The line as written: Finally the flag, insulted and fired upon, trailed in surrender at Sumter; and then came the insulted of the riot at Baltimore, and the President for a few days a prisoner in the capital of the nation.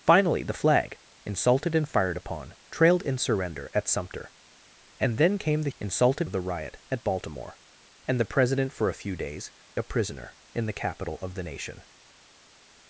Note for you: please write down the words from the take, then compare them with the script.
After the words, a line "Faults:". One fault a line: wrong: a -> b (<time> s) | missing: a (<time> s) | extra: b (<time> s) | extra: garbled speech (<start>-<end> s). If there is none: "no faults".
Finally the flag, insulted and fired upon, trailed in surrender at Sumter; and then came the insulted of the riot at Baltimore, and the President for a few days a prisoner in the capital of the nation.
Faults:
no faults